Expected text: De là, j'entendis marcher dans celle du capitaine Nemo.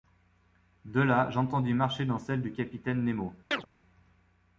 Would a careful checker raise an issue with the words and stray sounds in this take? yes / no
yes